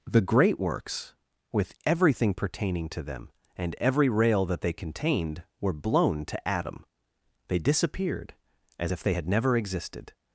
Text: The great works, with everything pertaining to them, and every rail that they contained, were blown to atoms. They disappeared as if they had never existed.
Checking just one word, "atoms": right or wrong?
wrong